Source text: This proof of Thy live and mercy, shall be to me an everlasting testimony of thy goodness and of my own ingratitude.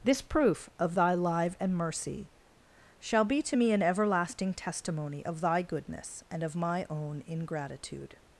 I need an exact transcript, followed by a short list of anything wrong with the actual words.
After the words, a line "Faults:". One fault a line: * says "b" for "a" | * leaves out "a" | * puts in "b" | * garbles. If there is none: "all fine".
This proof of Thy live and mercy, shall be to me an everlasting testimony of thy goodness and of my own ingratitude.
Faults:
all fine